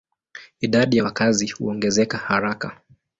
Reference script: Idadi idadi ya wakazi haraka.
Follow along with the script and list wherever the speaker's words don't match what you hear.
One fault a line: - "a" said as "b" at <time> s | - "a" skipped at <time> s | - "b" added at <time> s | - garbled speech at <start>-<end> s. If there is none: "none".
- "idadi" skipped at 1.0 s
- "huongezeka" added at 1.5 s